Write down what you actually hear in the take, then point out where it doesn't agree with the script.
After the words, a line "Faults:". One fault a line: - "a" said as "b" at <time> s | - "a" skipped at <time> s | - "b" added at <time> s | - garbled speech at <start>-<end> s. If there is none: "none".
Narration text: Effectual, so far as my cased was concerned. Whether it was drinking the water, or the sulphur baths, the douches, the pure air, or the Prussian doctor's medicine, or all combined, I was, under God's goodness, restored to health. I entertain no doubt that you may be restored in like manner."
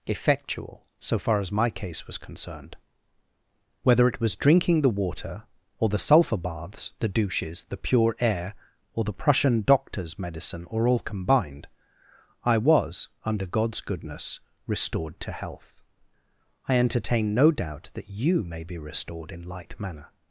Effectual, so far as my case was concerned. Whether it was drinking the water, or the sulphur baths, the douches, the pure air, or the Prussian doctor's medicine, or all combined, I was, under God's goodness, restored to health. I entertain no doubt that you may be restored in like manner."
Faults:
- "cased" said as "case" at 1.7 s